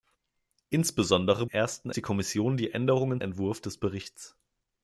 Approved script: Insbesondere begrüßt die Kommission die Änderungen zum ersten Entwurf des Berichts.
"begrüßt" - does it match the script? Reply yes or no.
no